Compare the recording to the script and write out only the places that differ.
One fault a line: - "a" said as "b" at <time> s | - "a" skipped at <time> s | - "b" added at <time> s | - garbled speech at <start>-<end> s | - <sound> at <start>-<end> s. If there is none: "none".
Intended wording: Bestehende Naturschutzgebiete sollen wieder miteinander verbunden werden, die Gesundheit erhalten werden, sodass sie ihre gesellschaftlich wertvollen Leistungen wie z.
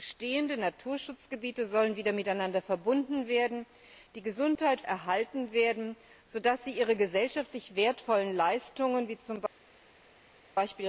none